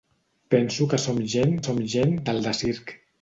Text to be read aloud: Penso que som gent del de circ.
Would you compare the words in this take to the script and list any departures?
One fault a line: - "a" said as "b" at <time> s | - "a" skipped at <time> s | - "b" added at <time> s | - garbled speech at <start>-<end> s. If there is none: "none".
- "som gent" added at 1.6 s